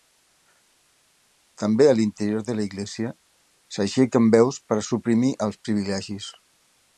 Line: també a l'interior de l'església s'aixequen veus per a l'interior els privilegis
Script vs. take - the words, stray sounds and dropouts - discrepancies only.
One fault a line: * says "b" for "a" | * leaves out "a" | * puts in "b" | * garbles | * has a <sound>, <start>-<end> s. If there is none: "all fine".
* says "suprimir" for "l'interior"